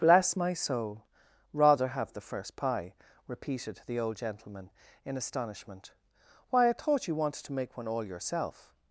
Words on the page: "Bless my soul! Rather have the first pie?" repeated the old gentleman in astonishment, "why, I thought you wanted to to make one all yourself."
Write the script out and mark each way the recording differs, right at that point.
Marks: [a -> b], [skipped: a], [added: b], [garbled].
"Bless my soul! Rather have the first pie?" repeated the old gentleman in astonishment, "why, I thought you wanted to [skipped: to] make one all yourself."